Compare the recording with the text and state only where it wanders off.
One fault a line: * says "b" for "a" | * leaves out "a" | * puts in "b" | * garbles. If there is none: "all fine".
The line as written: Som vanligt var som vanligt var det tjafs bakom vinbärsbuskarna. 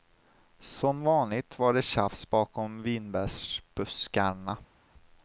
* leaves out "som vanligt var"